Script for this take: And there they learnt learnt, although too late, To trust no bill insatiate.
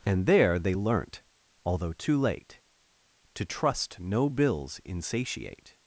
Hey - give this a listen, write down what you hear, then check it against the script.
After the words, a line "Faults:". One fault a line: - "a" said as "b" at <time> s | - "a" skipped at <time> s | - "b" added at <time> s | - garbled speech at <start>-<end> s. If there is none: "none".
And there they learnt, although too late, To trust no bills insatiate.
Faults:
- "learnt" skipped at 1.2 s
- "bill" said as "bills" at 4.3 s